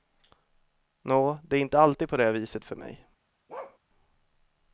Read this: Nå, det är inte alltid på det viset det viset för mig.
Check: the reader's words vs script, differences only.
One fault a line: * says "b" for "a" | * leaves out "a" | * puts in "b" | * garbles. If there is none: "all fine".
* leaves out "det viset"